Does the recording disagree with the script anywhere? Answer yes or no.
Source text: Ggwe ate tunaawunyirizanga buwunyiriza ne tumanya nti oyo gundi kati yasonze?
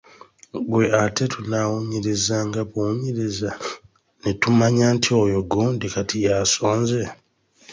no